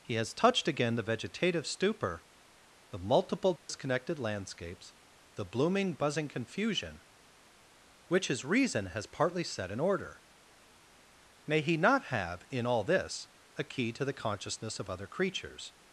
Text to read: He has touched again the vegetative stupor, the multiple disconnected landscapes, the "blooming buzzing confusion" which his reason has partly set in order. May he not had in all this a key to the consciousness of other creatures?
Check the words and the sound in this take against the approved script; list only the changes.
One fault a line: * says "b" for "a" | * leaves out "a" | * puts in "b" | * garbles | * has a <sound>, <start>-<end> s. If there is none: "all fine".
* has a dropout, 3.6-3.7 s
* says "have" for "had"